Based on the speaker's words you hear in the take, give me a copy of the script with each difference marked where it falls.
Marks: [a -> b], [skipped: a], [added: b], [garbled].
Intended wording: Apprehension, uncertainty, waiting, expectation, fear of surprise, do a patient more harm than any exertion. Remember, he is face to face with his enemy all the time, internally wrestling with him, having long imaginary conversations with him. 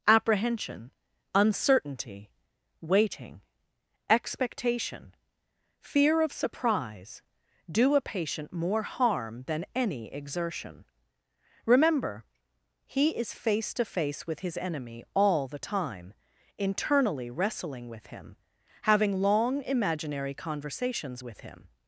Apprehension, uncertainty, waiting, expectation, fear of surprise, do a patient more harm than any exertion. Remember, he is face to face with his enemy all the time, internally wrestling with him, having long imaginary conversations with him.